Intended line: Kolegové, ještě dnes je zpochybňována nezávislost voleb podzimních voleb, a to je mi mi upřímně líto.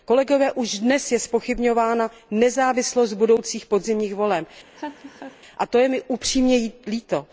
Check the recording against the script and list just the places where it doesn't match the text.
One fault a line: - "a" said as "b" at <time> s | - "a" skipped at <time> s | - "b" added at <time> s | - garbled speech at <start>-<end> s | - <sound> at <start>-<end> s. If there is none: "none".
- "ještě" said as "už" at 0.5 s
- "voleb" said as "budoucích" at 3.1 s
- laugh at 4.7-5.4 s
- "mi" skipped at 6.0 s